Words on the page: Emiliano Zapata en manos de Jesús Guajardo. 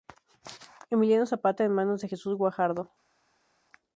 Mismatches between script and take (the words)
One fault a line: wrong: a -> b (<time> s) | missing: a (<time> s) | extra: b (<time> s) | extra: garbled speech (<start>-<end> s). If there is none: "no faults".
no faults